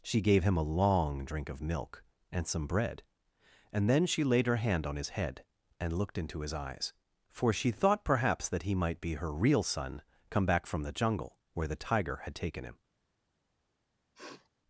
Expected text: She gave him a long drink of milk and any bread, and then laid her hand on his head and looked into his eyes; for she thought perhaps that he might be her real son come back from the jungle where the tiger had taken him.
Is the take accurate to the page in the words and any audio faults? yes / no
no